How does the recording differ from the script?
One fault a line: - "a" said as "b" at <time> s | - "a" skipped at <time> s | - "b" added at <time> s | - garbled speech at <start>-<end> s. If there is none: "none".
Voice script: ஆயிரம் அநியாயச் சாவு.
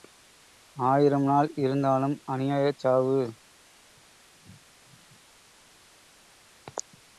- "நாள் இருந்தாலும்" added at 1.2 s